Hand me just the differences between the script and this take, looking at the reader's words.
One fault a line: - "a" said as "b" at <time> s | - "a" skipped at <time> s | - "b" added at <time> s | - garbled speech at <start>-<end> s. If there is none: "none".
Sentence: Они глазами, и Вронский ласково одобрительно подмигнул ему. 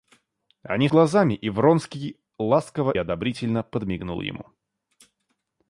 none